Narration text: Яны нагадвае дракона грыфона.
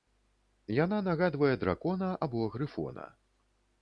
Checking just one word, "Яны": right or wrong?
wrong